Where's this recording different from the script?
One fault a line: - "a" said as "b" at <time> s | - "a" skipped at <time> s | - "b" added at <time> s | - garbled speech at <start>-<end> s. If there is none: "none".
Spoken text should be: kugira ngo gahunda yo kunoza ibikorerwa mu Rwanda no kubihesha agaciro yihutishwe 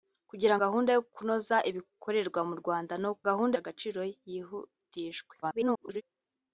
- "ngo" skipped at 0.6 s
- "kubihesha" said as "gahunda" at 3.3 s
- garbled speech at 5.4-6.0 s